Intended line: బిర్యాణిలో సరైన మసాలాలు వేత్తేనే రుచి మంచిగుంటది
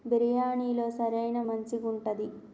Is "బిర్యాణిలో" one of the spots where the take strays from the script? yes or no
no